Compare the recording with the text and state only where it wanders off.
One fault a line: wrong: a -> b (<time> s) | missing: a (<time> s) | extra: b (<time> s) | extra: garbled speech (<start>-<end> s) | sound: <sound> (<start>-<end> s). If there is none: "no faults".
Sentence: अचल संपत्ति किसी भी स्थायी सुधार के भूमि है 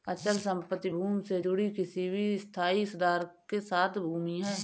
extra: भूमि से जुड़ी (0.9 s)
extra: साथ (3.6 s)